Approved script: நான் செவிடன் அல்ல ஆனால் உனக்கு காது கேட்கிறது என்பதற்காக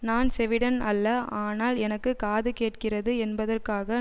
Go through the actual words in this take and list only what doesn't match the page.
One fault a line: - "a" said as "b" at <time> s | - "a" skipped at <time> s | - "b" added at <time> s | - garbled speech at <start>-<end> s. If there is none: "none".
- "உனக்கு" said as "எனக்கு" at 1.8 s